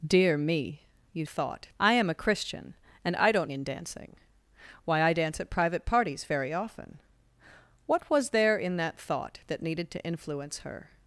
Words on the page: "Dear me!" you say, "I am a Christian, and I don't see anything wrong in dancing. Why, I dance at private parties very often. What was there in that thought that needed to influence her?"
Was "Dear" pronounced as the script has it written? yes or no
yes